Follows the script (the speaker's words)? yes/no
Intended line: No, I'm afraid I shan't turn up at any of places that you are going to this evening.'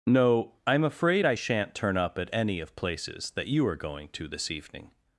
yes